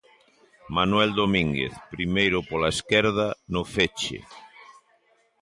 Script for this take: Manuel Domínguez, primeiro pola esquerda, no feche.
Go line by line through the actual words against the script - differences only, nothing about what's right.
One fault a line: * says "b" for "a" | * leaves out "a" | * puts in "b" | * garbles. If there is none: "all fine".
all fine